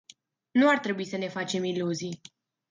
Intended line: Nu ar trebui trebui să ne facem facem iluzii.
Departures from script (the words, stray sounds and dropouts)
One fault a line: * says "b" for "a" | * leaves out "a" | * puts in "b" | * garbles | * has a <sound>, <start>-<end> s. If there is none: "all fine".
* leaves out "trebui"
* leaves out "facem"